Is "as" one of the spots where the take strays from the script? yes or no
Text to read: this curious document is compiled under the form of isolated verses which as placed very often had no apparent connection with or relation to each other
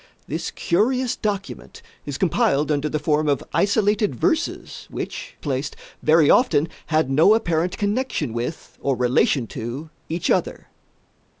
yes